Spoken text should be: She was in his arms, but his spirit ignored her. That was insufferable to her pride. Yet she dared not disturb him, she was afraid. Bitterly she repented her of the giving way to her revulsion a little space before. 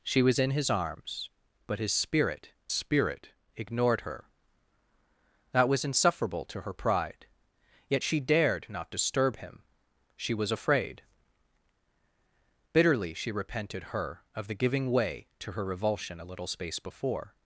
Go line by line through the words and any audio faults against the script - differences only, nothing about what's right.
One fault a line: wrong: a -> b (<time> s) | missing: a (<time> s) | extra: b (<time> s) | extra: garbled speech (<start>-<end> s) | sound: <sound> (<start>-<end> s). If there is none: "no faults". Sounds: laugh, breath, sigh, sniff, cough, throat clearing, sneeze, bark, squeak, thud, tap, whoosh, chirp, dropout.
extra: spirit (2.7 s)